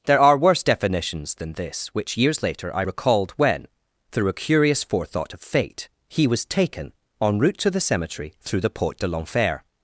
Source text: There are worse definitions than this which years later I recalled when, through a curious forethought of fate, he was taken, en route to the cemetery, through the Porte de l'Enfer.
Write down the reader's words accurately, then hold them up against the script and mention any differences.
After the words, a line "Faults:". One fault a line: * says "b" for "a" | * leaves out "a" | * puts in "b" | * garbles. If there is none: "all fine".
There are worse definitions than this which years later I recalled when, through a curious forethought of fate, he was taken, en route to the cemetery, through the Porte de l'Enfer.
Faults:
all fine